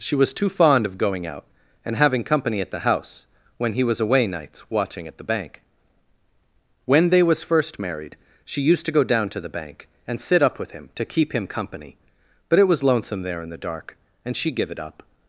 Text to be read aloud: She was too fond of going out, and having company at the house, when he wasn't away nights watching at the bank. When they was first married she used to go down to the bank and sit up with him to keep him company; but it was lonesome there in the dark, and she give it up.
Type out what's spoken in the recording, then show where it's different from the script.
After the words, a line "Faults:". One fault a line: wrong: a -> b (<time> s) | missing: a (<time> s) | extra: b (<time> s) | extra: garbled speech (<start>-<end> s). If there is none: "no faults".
She was too fond of going out, and having company at the house, when he was away nights watching at the bank. When they was first married she used to go down to the bank and sit up with him to keep him company; but it was lonesome there in the dark, and she give it up.
Faults:
wrong: wasn't -> was (3.8 s)